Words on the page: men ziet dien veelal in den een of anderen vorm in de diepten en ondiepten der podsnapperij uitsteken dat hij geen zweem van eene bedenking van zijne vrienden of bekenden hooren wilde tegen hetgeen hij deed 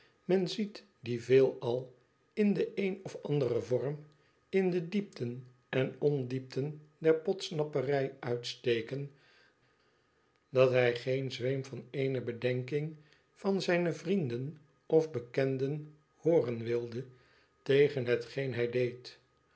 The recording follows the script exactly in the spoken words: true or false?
true